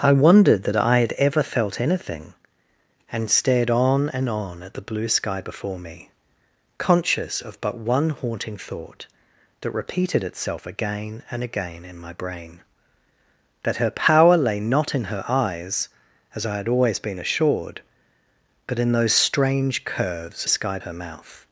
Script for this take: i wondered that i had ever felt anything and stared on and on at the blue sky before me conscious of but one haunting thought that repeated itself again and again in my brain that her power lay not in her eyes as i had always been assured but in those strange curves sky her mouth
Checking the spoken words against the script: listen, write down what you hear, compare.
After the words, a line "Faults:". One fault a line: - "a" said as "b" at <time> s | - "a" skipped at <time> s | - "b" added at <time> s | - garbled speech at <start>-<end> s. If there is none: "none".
i wondered that i had ever felt anything and stared on and on at the blue sky before me conscious of but one haunting thought that repeated itself again and again in my brain that her power lay not in her eyes as i had always been assured but in those strange curves sky her mouth
Faults:
none